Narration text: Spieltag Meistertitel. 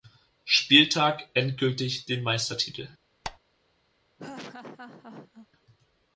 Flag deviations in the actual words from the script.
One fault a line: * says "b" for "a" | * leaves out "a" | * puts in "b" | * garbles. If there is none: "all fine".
* puts in "endgültig den"